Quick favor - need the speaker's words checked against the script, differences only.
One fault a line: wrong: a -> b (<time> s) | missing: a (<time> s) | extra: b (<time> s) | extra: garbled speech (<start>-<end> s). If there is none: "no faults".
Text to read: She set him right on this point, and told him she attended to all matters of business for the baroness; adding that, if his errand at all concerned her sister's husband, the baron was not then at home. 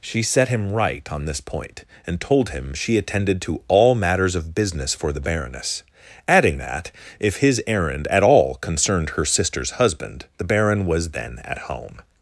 missing: not (11.1 s)